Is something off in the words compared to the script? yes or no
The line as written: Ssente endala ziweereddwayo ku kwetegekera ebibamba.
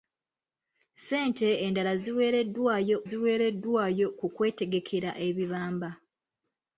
yes